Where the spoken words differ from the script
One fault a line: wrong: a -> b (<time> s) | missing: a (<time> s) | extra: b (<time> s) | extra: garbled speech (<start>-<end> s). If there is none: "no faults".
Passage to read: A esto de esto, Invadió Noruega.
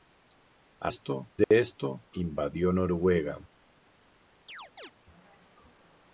no faults